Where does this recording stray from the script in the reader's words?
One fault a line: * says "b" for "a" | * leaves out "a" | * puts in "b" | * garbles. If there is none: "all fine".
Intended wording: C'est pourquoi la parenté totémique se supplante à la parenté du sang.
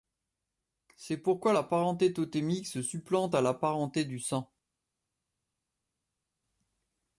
all fine